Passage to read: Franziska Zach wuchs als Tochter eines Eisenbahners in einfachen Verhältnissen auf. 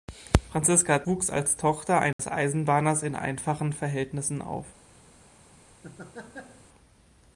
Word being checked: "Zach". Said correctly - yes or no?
no